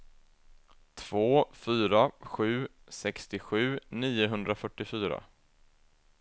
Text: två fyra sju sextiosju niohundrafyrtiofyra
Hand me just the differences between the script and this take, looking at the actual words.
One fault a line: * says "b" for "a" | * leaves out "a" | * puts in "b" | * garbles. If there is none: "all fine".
all fine